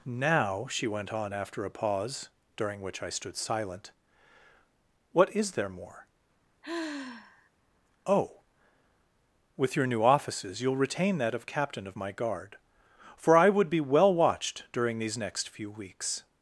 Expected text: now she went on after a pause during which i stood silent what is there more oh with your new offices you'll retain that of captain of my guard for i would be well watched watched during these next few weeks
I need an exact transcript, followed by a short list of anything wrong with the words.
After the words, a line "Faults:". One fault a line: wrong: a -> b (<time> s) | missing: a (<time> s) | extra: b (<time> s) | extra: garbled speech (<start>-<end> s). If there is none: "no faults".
now she went on after a pause during which i stood silent what is there more oh with your new offices you'll retain that of captain of my guard for i would be well watched during these next few weeks
Faults:
missing: watched (14.6 s)